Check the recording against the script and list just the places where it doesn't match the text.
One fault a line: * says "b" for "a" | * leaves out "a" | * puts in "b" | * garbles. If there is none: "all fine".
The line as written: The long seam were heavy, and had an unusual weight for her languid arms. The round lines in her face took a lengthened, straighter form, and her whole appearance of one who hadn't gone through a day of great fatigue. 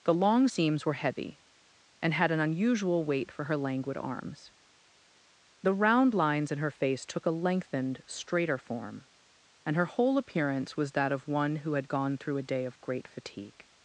* says "seams" for "seam"
* puts in "was that"
* says "had" for "hadn't"